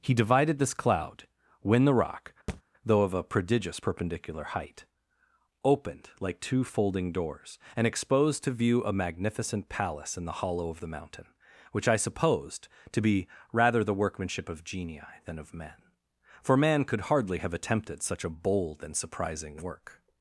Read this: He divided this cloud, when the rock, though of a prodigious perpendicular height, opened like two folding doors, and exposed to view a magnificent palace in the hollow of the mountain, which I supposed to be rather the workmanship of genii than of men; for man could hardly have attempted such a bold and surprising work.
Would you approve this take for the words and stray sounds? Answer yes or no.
no